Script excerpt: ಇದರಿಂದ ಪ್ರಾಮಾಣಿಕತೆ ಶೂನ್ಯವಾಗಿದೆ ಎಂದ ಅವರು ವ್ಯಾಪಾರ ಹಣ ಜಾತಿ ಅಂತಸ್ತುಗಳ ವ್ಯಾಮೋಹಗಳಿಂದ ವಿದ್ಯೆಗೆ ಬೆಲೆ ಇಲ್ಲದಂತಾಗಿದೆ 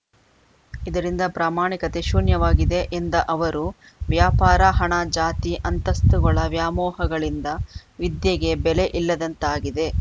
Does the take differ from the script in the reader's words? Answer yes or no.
no